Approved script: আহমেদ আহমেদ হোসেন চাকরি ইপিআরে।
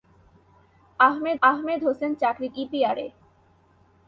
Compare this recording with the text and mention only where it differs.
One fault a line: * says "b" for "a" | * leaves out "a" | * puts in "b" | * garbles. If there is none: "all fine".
all fine